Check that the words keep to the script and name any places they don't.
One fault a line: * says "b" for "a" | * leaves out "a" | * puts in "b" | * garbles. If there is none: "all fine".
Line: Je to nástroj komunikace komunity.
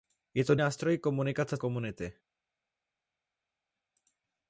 all fine